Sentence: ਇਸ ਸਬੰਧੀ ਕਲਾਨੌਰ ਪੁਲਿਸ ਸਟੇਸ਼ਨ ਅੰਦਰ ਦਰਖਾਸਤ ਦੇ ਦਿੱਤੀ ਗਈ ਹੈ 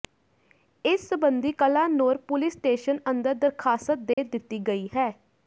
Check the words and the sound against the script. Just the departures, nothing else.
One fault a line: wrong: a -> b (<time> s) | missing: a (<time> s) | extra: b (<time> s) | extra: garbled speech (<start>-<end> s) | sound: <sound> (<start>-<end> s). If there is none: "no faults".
sound: dropout (4.1-4.2 s)